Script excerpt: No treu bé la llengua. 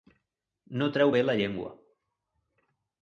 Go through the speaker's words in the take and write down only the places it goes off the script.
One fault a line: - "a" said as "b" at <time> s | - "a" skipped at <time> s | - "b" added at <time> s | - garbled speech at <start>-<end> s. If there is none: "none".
none